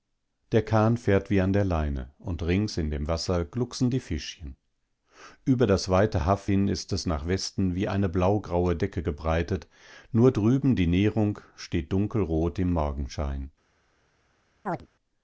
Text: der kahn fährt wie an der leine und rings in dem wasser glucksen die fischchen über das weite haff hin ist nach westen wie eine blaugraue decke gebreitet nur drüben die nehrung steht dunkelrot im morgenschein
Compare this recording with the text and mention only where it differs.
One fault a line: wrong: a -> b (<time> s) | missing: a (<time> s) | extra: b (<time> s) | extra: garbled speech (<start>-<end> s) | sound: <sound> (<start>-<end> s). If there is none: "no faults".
extra: es (6.9 s)
sound: chirp (14.7-14.9 s)